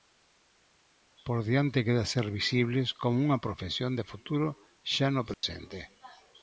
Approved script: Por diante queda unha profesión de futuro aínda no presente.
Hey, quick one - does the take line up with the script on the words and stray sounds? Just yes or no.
no